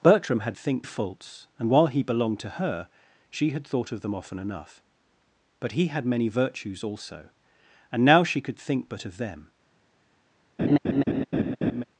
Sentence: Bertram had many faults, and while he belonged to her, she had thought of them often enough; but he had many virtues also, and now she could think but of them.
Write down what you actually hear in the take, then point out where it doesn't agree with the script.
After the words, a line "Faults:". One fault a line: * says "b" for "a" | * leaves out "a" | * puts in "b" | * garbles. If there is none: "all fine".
Bertram had think faults, and while he belonged to her, she had thought of them often enough; but he had many virtues also, and now she could think but of them.
Faults:
* says "think" for "many"